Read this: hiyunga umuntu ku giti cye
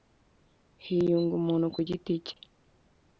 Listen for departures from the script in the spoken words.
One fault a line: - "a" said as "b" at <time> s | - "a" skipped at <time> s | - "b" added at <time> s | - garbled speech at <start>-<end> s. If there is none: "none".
none